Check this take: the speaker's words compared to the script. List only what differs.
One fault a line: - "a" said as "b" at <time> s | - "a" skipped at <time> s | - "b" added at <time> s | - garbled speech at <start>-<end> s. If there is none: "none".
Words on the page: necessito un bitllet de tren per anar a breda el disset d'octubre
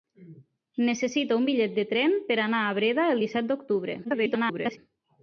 - garbled speech at 4.0-4.8 s